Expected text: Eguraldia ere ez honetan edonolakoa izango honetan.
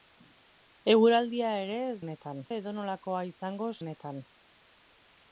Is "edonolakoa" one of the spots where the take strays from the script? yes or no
no